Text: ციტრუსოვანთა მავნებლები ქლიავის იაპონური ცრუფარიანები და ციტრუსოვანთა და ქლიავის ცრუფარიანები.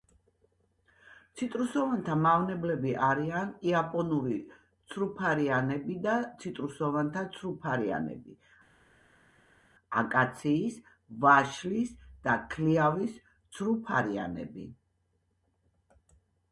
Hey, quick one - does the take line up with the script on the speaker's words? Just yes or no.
no